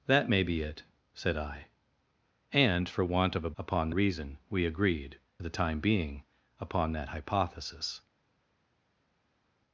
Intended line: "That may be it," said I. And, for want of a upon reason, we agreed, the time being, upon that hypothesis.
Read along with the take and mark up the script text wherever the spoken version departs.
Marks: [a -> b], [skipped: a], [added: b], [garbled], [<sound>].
"That may be it," said I. And, for want of a upon reason, we agreed, the time being, upon that hypothesis.